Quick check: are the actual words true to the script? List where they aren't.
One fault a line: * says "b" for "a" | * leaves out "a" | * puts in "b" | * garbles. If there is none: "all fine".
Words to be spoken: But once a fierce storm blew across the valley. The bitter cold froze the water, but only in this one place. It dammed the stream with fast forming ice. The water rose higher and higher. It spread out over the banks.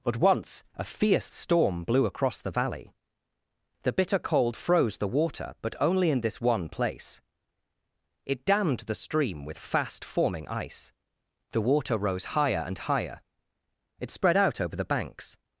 all fine